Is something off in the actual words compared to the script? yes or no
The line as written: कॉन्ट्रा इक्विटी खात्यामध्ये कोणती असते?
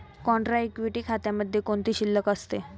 yes